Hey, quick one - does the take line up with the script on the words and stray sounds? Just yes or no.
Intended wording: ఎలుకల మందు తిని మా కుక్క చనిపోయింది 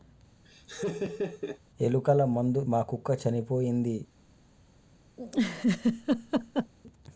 no